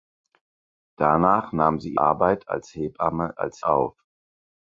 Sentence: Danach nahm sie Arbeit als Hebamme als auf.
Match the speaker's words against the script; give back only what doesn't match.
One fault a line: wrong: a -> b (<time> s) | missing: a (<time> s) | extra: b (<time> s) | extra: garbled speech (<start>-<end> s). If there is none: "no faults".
no faults